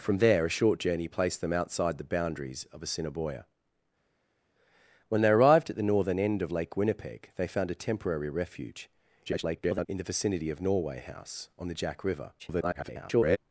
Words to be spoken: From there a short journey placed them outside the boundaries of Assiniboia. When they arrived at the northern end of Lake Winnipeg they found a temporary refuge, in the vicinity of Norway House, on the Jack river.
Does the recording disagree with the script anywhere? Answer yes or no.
yes